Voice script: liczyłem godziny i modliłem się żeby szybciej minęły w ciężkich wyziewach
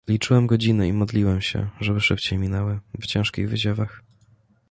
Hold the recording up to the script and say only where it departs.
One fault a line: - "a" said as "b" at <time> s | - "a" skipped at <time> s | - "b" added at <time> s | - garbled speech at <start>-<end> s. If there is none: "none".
none